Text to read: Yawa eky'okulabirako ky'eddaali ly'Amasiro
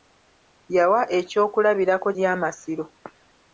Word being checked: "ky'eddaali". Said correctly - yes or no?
no